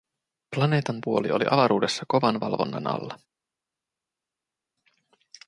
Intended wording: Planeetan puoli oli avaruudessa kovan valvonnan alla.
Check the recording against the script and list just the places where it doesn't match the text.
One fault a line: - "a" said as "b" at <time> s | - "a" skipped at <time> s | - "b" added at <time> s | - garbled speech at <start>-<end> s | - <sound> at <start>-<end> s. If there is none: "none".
none